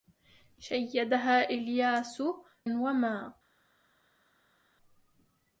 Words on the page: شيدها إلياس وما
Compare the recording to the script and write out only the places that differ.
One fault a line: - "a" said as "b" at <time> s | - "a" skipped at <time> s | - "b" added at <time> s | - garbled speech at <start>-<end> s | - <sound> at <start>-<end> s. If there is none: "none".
none